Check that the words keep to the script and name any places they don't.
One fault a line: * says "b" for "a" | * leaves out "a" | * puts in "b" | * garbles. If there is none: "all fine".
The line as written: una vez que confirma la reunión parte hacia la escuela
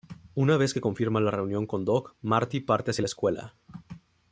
* puts in "con doc marty"